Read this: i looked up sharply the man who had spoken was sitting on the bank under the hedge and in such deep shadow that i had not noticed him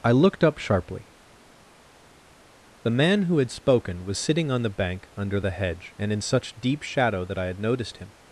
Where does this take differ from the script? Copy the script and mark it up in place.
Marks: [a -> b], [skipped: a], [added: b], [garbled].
i looked up sharply the man who had spoken was sitting on the bank under the hedge and in such deep shadow that i had [skipped: not] noticed him